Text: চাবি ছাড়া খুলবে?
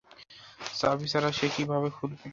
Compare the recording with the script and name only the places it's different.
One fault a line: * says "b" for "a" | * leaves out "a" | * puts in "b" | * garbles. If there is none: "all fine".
* puts in "সে কীভাবে"